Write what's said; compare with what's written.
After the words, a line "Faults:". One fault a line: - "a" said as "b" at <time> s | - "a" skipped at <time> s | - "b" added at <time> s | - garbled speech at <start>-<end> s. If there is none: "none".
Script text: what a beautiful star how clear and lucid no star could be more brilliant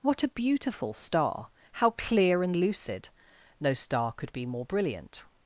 what a beautiful star how clear and lucid no star could be more brilliant
Faults:
none